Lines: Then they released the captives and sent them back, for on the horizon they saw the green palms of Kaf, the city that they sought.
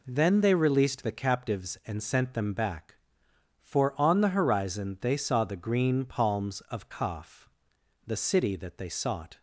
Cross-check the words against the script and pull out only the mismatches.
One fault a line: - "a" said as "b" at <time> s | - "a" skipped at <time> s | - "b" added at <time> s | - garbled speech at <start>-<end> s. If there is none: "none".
none